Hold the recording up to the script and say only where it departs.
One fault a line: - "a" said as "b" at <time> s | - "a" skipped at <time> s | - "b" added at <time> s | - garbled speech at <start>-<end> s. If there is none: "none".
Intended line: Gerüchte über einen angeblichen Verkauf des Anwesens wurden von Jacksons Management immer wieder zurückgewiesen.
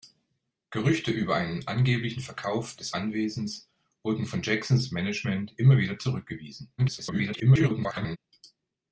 - garbled speech at 6.8-8.2 s